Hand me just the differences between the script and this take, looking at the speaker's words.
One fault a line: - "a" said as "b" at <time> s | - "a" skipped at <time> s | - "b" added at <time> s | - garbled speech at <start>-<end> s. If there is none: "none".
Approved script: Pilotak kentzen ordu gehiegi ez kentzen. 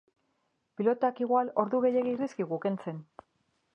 - "kentzen" said as "igual" at 1.2 s
- "dizkigu" added at 2.2 s